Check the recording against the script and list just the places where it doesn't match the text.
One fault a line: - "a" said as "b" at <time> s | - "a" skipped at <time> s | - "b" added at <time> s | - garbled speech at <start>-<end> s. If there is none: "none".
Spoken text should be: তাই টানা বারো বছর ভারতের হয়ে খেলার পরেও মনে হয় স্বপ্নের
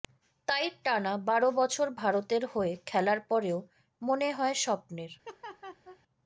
none